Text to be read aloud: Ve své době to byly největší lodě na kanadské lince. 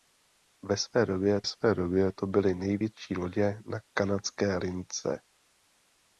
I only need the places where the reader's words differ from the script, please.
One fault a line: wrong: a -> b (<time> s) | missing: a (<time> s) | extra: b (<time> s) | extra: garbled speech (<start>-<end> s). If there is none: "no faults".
extra: své době (1.4 s)